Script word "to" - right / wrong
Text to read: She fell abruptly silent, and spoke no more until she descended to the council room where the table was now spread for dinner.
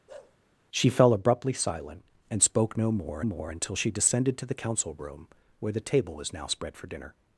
right